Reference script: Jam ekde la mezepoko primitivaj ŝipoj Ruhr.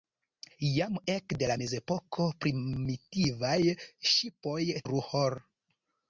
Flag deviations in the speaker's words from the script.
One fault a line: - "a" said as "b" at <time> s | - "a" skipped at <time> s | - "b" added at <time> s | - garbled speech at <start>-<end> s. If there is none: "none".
none